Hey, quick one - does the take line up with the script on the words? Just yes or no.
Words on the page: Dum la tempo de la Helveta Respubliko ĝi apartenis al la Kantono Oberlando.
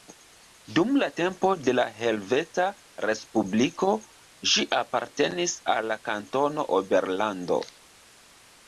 yes